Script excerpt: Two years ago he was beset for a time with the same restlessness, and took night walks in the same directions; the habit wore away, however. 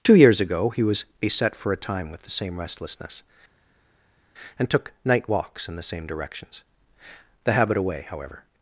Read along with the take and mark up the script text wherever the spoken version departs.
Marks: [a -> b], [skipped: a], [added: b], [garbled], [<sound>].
Two years ago he was beset for a time with the same restlessness, and took night walks in the same directions; the habit [skipped: wore] away, however.